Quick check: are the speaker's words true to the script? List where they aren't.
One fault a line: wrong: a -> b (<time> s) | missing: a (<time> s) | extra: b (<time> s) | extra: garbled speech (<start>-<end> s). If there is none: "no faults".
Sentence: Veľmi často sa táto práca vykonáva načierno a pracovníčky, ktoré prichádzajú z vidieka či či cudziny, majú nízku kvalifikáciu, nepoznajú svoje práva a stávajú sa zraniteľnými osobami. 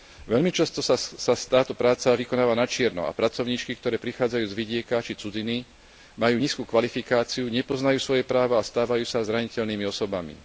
missing: či (5.2 s)